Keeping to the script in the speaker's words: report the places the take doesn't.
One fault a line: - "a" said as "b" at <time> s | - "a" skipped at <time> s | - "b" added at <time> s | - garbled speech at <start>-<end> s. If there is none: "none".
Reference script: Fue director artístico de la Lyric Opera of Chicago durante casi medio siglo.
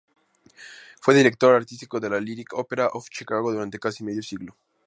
none